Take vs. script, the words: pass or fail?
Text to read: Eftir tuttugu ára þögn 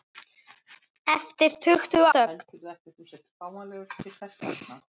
fail